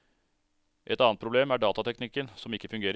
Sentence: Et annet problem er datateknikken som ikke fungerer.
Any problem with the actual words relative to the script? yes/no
no